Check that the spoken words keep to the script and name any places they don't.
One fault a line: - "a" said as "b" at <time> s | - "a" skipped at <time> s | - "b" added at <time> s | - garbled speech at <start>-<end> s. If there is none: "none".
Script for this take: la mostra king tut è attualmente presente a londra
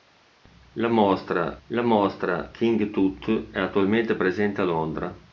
- "la mostra" added at 1.7 s